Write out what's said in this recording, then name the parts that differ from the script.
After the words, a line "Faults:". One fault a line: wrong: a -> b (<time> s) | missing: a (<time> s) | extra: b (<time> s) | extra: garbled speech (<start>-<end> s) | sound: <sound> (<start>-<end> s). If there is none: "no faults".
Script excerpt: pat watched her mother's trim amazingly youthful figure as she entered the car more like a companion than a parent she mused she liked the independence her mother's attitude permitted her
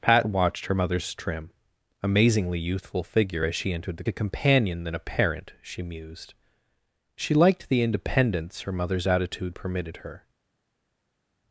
pat watched her mother's trim amazingly youthful figure as she entered the a companion than a parent she mused she liked the independence her mother's attitude permitted her
Faults:
missing: car more like (4.0 s)